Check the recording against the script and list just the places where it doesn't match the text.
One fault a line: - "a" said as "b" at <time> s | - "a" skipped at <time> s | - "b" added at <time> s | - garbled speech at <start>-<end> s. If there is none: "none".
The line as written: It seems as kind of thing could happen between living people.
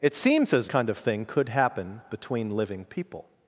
none